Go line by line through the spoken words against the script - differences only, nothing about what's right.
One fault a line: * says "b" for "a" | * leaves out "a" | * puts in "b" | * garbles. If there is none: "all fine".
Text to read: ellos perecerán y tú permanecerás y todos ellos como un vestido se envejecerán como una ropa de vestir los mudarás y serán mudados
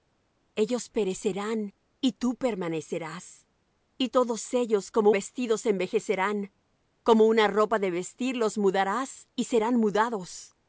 * leaves out "un"